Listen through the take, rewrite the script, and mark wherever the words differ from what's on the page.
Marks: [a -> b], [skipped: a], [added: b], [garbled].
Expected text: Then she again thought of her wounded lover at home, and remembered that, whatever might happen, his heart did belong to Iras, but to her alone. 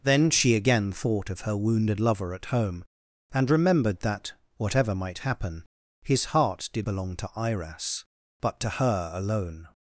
Then she again thought of her wounded lover at home, and remembered that, whatever might happen, his heart did belong to Iras, but to her alone.